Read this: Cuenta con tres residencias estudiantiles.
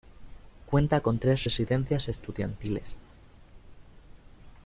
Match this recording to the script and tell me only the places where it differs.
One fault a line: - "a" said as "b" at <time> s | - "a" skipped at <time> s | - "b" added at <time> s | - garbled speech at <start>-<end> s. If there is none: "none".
none